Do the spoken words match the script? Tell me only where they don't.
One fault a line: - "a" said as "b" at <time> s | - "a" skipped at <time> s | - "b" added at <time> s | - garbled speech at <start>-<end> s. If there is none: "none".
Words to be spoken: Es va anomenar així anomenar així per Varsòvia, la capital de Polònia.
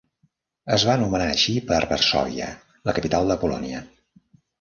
- "anomenar així" skipped at 1.5 s